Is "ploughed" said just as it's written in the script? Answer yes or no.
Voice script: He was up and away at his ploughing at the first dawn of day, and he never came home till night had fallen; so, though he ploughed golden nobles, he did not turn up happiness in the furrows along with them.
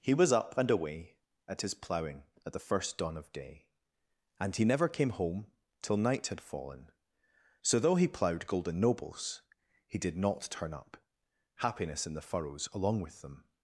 yes